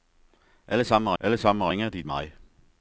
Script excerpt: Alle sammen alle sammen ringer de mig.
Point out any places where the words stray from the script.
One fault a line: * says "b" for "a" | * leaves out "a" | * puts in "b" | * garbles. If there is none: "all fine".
all fine